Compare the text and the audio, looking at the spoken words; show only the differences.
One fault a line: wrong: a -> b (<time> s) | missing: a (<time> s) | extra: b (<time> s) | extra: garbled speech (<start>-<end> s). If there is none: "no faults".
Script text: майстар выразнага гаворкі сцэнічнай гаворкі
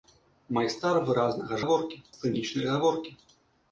no faults